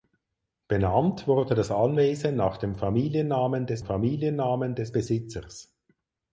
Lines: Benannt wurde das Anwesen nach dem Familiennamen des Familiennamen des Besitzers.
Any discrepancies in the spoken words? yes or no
no